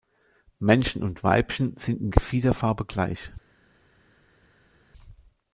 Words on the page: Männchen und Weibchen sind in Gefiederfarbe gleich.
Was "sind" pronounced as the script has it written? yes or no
yes